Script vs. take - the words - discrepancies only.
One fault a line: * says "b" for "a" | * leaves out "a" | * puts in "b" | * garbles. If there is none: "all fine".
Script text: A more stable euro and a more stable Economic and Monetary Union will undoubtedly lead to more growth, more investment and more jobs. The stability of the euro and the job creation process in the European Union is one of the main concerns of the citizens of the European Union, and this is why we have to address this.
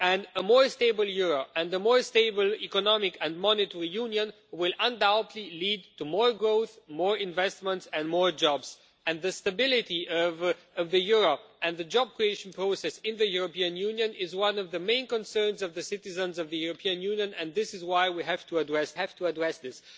* puts in "have to address"